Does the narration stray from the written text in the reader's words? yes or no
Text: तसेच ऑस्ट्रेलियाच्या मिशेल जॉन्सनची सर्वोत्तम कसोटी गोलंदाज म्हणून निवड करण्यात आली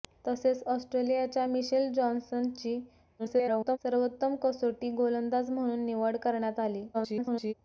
yes